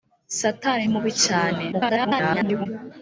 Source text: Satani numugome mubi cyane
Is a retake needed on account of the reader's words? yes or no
yes